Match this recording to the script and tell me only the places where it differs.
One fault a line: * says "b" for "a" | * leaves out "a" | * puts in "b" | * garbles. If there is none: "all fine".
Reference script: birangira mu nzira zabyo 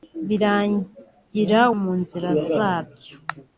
all fine